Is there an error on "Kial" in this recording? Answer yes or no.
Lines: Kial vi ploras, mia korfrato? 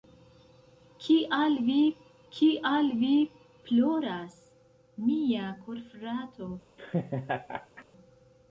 no